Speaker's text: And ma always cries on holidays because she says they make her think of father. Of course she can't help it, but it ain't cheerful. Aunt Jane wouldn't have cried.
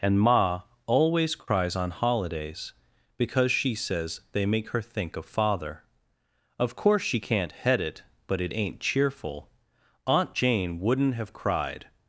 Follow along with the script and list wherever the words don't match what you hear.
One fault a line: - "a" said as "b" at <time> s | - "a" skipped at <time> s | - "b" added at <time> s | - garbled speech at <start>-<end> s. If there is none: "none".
- "help" said as "head" at 7.5 s